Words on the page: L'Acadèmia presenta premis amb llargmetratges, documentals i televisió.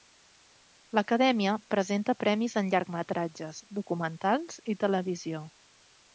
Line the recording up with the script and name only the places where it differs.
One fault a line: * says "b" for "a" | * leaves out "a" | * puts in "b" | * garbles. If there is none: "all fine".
* says "en" for "amb"